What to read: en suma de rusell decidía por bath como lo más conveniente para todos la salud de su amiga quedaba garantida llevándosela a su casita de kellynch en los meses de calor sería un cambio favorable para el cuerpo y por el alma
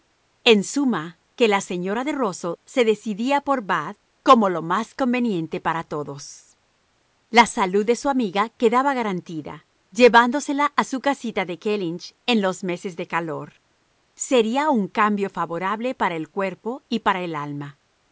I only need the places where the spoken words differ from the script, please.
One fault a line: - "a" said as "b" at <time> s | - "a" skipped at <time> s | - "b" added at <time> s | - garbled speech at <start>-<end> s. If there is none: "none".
- "que la señora" added at 1.4 s
- "se" added at 2.6 s
- "por" said as "para" at 17.0 s